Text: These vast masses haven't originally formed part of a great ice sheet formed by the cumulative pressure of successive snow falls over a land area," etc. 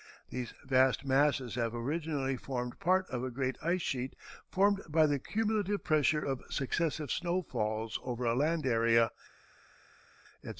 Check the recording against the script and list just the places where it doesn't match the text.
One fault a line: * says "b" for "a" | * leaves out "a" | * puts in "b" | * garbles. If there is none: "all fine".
* says "have" for "haven't"